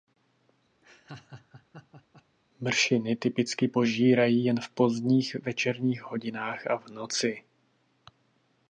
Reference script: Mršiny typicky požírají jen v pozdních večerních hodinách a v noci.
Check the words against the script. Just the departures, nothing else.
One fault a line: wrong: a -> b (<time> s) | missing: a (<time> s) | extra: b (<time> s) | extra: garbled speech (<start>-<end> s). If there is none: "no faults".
no faults